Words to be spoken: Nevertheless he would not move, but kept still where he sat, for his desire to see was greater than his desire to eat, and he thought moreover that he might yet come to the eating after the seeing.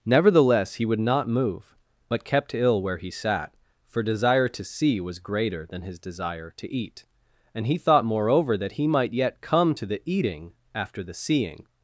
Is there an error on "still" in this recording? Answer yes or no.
yes